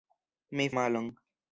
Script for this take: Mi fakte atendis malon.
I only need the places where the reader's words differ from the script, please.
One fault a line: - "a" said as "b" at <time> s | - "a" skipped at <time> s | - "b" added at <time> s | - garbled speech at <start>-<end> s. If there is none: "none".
- "fakte atendis" skipped at 0.7 s